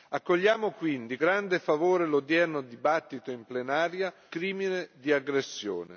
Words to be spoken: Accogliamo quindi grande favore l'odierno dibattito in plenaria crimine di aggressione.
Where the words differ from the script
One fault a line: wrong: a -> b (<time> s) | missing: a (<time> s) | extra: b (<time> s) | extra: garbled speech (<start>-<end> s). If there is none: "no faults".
no faults